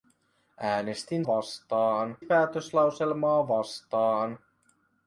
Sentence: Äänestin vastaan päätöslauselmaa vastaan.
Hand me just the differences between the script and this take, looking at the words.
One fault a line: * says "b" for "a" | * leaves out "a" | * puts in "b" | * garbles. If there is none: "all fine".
all fine